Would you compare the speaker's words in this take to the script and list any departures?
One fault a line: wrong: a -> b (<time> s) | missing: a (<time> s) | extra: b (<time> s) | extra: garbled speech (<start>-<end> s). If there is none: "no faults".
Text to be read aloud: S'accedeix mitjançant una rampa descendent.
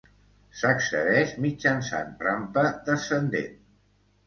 missing: una (2.1 s)